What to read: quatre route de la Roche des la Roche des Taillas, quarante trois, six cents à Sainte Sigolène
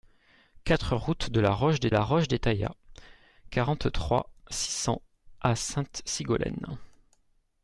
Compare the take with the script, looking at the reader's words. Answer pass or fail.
pass